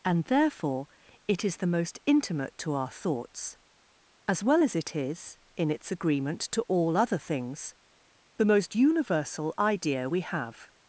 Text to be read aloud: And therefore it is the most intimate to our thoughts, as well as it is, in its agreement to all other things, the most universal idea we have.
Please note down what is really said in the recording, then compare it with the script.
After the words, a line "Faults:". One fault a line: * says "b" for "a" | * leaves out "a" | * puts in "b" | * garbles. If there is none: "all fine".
And therefore it is the most intimate to our thoughts, as well as it is, in its agreement to all other things, the most universal idea we have.
Faults:
all fine